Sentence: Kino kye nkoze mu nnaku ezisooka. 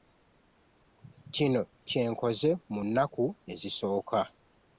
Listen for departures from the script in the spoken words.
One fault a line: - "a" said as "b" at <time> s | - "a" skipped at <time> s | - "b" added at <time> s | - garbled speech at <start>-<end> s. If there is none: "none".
none